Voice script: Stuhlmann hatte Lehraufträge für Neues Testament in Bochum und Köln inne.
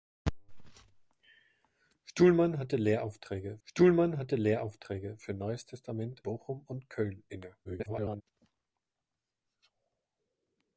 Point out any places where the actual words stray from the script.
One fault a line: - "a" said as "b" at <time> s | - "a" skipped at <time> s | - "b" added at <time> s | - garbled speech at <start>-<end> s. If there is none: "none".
- "stuhlmann hatte Lehraufträge" added at 3.6 s
- "in" skipped at 6.2 s
- garbled speech at 7.6-8.2 s